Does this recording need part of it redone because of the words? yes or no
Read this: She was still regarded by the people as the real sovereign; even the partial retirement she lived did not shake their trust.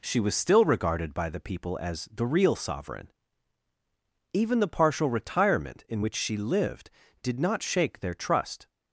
yes